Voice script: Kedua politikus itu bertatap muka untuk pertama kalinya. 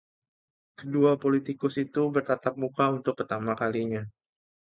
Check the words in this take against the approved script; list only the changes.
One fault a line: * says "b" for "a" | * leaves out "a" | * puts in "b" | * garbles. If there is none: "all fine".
all fine